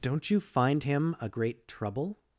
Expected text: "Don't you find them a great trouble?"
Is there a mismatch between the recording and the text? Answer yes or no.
yes